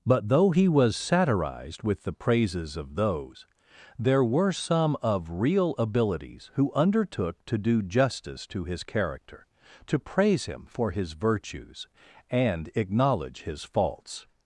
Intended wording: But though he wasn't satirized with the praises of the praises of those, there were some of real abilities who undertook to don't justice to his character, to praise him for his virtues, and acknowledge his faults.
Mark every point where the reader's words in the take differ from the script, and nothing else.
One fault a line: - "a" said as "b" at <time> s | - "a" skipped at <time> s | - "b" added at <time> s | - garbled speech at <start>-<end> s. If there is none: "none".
- "wasn't" said as "was" at 0.7 s
- "the praises of" skipped at 3.0 s
- "don't" said as "do" at 7.6 s